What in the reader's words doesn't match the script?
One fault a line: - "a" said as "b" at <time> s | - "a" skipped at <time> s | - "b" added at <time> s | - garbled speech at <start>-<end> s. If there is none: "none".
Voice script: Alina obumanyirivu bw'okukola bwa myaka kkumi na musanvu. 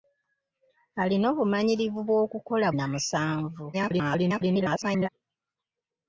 - "bwa myaka kkumi" skipped at 2.7 s
- garbled speech at 3.7-5.1 s